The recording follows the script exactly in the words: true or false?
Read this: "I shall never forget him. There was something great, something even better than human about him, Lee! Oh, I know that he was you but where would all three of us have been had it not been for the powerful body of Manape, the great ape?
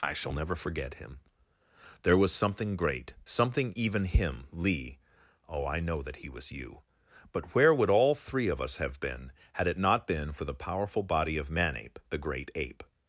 false